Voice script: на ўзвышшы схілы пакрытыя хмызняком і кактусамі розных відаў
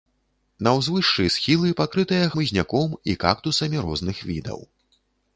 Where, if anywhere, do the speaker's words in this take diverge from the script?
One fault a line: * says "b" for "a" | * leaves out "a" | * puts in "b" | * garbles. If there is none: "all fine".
all fine